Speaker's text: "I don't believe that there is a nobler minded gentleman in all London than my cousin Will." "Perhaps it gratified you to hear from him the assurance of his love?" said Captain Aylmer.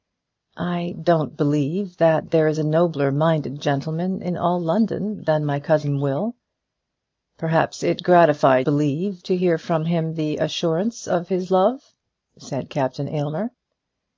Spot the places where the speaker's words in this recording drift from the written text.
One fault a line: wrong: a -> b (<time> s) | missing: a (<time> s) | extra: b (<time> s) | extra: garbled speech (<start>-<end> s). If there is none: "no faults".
wrong: you -> believe (8.6 s)